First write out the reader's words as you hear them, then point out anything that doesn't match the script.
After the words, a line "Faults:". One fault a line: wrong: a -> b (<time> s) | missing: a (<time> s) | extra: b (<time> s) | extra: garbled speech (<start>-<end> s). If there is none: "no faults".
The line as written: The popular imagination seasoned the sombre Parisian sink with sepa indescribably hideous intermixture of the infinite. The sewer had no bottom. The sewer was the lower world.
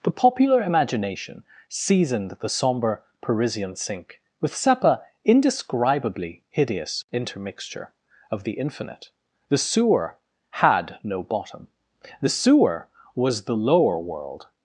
The popular imagination seasoned the sombre Parisian sink with sepa indescribably hideous intermixture of the infinite. The sewer had no bottom. The sewer was the lower world.
Faults:
no faults